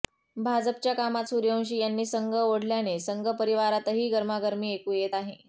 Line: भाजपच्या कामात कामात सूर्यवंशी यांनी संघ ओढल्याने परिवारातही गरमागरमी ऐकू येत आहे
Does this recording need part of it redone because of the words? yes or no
yes